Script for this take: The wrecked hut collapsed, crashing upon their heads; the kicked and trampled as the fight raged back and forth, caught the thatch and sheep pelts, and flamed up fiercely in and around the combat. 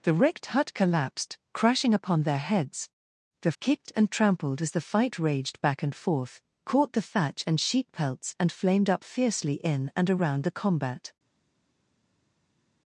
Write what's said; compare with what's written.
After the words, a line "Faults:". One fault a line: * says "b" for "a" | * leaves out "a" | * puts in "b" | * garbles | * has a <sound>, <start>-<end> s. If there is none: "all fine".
The wrecked hut collapsed, crashing upon their heads; the kicked and trampled as the fight raged back and forth, caught the thatch and sheep pelts, and flamed up fiercely in and around the combat.
Faults:
all fine